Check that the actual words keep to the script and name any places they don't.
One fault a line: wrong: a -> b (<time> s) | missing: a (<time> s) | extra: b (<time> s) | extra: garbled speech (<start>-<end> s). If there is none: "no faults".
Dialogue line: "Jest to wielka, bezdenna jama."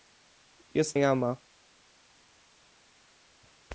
missing: to wielka bezdenna (1.0 s)